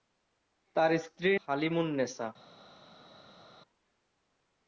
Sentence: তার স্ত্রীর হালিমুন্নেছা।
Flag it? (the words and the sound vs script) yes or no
no